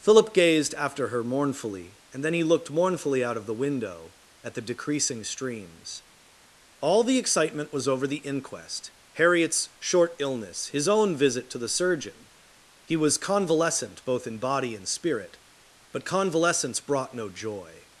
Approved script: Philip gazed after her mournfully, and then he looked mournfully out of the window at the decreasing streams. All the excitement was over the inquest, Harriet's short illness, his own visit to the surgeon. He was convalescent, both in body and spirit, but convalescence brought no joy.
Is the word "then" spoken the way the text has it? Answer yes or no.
yes